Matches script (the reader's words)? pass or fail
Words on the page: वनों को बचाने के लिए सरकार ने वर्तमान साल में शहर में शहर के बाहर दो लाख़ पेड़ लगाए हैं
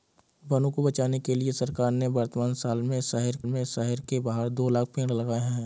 pass